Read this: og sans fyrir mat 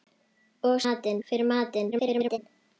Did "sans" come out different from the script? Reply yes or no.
yes